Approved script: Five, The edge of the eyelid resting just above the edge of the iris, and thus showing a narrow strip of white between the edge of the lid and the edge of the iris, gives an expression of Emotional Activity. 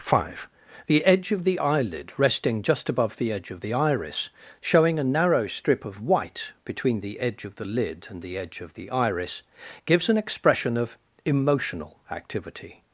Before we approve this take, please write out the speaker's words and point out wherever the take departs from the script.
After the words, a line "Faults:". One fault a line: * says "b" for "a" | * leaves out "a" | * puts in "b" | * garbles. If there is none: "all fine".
Five, The edge of the eyelid resting just above the edge of the iris, showing a narrow strip of white between the edge of the lid and the edge of the iris, gives an expression of Emotional Activity.
Faults:
* leaves out "and thus"